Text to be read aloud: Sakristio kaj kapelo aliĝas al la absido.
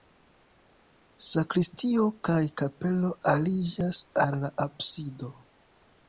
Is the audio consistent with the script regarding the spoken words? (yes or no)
yes